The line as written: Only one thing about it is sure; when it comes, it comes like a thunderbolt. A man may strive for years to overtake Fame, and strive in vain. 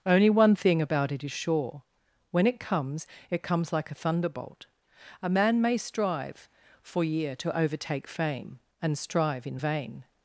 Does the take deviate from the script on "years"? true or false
true